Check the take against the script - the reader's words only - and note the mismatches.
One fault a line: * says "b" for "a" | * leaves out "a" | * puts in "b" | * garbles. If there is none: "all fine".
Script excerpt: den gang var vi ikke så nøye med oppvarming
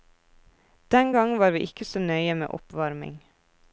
all fine